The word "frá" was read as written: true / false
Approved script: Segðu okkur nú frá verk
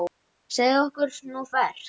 false